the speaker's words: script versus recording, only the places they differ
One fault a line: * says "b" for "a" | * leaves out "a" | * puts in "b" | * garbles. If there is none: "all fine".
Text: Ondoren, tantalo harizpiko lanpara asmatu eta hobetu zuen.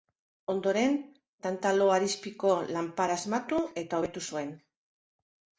all fine